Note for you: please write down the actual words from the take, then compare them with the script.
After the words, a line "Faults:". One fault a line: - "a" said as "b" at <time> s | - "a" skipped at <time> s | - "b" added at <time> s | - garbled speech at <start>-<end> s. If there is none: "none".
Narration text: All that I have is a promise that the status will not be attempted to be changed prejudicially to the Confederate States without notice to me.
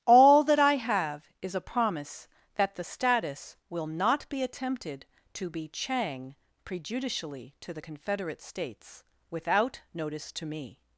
All that I have is a promise that the status will not be attempted to be chang prejudicially to the Confederate States without notice to me.
Faults:
- "changed" said as "chang" at 5.7 s